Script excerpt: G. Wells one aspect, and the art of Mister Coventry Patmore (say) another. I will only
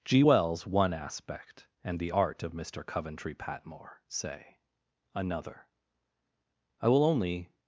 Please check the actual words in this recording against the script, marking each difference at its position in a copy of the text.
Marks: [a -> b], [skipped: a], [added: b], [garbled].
G. Wells one aspect, and the art of Mister Coventry Patmore (say) another. I will only